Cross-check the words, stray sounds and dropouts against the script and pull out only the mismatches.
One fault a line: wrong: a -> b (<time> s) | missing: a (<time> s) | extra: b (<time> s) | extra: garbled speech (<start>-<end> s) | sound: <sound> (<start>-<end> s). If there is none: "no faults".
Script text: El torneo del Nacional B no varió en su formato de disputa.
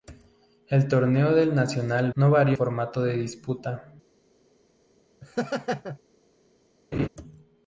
missing: B (2.1 s)
missing: en su (2.6 s)
sound: laugh (5.2-6.0 s)
sound: laugh (6.9-7.1 s)